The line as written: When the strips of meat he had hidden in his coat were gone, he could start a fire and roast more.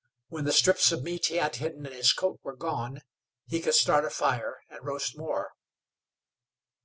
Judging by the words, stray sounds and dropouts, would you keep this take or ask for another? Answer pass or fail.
pass